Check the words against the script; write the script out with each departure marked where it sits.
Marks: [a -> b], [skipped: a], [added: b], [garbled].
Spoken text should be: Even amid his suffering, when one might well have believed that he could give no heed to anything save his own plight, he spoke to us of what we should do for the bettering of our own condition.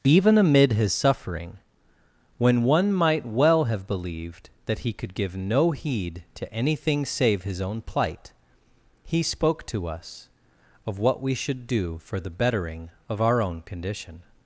Even amid his suffering, when one might well have believed that he could give no heed to anything save his own plight, he spoke to us of what we should do for the bettering of our own condition.